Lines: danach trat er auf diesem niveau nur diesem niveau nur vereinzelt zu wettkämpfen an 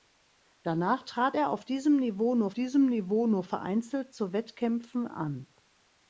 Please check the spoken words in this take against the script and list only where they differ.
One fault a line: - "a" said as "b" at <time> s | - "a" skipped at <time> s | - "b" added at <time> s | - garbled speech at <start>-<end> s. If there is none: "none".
none